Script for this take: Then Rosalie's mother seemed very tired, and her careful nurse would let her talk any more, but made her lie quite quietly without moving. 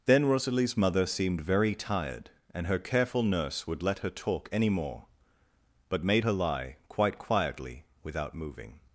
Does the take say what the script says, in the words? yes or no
yes